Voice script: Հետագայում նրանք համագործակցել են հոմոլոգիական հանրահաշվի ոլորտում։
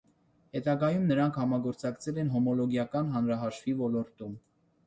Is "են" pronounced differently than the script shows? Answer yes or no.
no